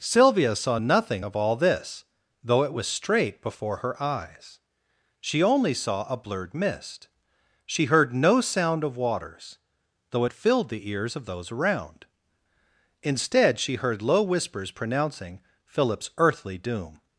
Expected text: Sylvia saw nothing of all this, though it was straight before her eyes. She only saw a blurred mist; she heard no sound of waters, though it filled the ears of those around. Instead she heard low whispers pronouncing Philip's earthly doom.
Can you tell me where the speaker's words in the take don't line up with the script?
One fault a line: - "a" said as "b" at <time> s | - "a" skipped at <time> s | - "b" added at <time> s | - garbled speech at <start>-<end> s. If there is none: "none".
none